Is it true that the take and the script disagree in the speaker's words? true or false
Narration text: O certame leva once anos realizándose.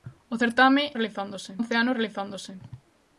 true